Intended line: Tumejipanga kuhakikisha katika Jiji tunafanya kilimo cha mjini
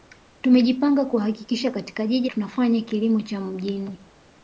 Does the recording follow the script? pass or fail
pass